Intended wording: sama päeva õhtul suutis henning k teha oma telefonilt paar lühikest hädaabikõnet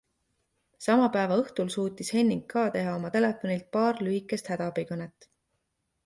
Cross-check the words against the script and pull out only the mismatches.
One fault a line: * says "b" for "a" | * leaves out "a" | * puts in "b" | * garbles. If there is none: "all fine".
all fine